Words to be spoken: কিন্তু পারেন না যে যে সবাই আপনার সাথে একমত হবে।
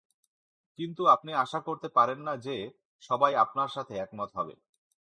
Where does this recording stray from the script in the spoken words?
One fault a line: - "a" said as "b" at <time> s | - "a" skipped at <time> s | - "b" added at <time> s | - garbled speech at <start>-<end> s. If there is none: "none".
- "আপনি আশা করতে" added at 1.1 s
- "যে" skipped at 2.5 s